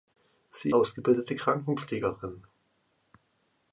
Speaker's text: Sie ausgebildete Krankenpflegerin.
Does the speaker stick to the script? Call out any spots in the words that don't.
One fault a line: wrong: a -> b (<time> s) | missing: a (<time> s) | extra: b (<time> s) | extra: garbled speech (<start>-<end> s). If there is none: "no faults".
no faults